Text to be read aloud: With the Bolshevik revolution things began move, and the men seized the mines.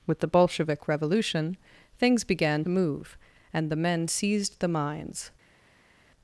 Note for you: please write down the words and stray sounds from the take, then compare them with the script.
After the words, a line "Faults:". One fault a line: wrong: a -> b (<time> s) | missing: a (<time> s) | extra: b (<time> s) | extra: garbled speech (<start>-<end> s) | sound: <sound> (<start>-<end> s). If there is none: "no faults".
With the Bolshevik revolution things began move, and the men seized the mines.
Faults:
no faults